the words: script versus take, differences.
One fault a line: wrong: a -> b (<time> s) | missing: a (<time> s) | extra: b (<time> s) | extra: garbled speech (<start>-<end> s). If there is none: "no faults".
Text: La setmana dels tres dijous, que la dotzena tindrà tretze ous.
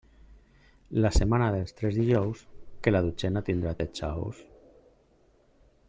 no faults